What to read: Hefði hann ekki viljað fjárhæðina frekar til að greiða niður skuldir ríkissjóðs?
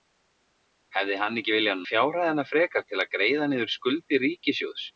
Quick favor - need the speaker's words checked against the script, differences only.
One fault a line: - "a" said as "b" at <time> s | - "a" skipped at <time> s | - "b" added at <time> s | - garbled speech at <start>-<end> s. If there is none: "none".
none